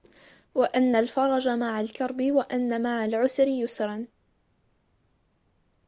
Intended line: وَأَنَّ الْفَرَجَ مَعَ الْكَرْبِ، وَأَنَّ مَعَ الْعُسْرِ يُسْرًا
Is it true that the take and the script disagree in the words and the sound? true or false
false